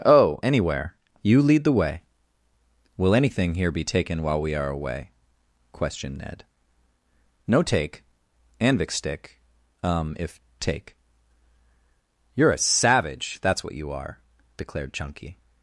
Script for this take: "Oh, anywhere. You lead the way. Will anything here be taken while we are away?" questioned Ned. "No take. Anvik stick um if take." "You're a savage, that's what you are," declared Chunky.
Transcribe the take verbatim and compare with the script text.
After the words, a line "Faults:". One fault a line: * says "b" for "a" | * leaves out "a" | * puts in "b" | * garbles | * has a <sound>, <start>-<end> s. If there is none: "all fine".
"Oh, anywhere. You lead the way. Will anything here be taken while we are away?" questioned Ned. "No take. Anvik stick um if take." "You're a savage, that's what you are," declared Chunky.
Faults:
all fine